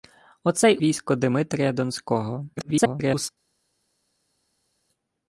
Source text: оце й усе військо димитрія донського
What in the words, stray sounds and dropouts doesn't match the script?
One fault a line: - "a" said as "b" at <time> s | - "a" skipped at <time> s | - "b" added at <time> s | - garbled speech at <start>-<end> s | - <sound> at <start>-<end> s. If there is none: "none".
- "усе" skipped at 0.8 s
- garbled speech at 2.6-3.3 s